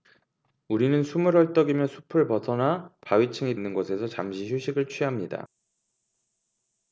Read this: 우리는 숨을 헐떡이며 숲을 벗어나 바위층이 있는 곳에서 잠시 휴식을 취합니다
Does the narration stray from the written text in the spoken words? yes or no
no